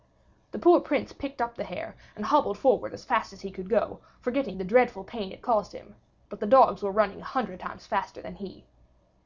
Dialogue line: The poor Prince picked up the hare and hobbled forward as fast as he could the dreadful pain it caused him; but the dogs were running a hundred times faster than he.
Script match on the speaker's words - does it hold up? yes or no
no